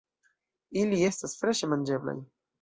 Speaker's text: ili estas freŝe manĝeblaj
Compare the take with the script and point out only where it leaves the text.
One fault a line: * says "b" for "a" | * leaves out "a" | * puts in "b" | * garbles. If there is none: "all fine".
all fine